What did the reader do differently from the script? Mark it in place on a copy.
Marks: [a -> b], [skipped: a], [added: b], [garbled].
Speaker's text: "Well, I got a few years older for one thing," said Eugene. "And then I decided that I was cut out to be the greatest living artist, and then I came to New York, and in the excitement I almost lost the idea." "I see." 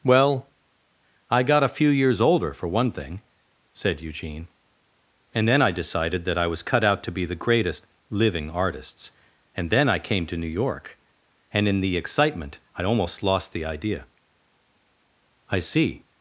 "Well, I got a few years older for one thing," said Eugene. "And then I decided that I was cut out to be the greatest living [artist, -> artists] and then I came to New York, and in the excitement I almost lost the idea." "I see."